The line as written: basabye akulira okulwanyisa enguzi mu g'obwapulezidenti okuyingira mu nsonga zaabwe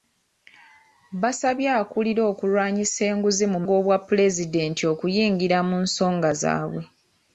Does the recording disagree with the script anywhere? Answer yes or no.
no